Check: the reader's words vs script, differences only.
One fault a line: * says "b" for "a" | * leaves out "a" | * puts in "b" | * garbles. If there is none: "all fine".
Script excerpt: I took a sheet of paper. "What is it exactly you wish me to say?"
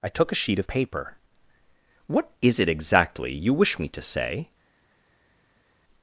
all fine